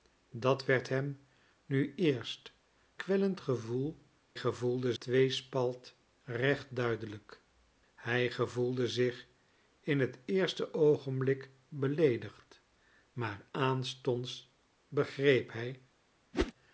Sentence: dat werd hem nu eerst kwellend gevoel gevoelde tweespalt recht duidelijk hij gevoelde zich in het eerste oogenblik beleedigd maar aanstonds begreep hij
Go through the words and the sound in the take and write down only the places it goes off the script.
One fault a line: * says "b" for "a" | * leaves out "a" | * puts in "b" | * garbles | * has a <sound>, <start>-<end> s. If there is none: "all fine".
* has a whoosh, 16.3-16.5 s